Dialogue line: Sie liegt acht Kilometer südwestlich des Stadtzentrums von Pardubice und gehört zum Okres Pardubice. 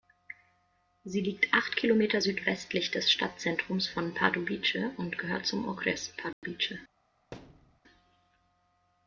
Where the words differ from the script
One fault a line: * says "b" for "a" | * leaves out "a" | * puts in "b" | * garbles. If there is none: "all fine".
all fine